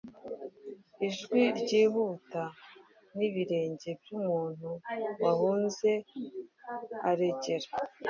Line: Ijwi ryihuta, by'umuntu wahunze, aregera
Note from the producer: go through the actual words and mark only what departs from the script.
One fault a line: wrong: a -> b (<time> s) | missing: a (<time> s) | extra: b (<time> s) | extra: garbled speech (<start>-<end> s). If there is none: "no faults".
extra: n'ibirenge (3.2 s)